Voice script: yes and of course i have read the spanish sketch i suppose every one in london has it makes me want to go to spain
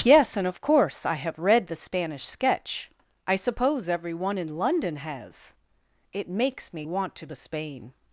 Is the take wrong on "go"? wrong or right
wrong